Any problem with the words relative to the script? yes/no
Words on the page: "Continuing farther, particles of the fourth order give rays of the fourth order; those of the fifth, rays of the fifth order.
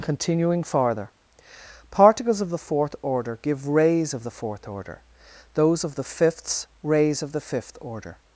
yes